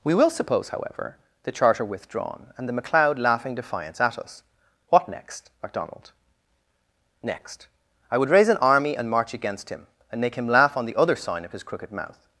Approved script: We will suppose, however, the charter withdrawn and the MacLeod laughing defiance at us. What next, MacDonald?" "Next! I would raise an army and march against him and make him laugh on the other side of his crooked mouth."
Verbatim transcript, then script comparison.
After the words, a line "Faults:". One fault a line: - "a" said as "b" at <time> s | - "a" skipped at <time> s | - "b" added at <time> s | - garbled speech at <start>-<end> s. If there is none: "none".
We will suppose, however, the charter withdrawn and the MacLeod laughing defiance at us. What next, MacDonald?" "Next! I would raise an army and march against him and make him laugh on the other sign of his crooked mouth."
Faults:
- "side" said as "sign" at 11.2 s